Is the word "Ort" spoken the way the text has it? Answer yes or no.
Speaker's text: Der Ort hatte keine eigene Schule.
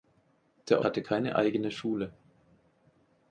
no